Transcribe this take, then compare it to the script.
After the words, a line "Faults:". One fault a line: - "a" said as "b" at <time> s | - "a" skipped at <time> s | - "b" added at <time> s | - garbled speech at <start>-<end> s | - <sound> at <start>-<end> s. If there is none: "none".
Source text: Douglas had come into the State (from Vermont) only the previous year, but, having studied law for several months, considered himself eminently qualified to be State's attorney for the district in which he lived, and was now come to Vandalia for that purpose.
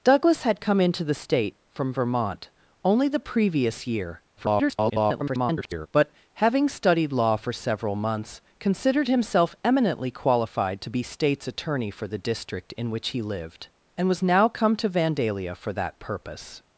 Douglas had come into the State (from Vermont) only the previous year, [garbled] but, having studied law for several months, considered himself eminently qualified to be State's attorney for the district in which he lived, and was now come to Vandalia for that purpose.
Faults:
- garbled speech at 4.4-5.9 s